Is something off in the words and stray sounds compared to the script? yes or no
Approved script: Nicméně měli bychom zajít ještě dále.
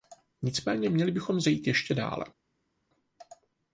no